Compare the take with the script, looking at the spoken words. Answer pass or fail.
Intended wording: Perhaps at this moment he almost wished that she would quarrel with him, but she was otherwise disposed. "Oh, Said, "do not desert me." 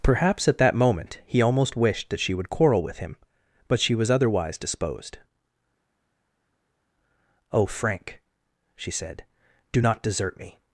fail